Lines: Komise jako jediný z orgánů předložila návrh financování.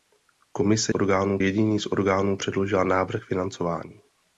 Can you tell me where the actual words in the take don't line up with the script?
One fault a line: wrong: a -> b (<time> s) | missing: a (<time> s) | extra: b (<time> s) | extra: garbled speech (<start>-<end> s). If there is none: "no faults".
wrong: jako -> orgánů (0.9 s)